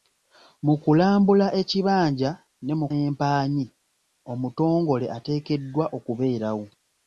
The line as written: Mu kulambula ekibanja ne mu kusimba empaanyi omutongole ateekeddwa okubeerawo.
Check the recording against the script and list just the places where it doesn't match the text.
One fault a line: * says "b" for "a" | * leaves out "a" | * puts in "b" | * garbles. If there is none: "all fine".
* leaves out "kusimba"